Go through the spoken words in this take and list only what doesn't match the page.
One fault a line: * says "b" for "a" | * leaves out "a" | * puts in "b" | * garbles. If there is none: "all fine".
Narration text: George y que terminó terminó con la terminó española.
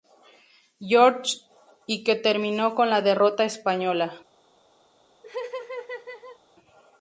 * leaves out "terminó"
* says "derrota" for "terminó"